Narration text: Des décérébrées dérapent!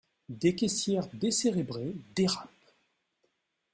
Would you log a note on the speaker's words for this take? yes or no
yes